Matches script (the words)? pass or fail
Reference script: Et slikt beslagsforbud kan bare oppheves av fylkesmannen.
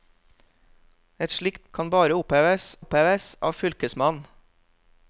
fail